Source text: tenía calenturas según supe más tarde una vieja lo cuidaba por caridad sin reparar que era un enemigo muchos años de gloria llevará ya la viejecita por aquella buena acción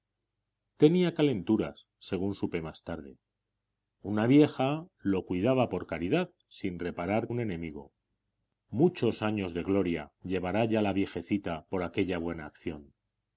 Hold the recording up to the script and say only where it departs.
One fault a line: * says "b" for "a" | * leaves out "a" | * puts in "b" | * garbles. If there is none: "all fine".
* leaves out "que era"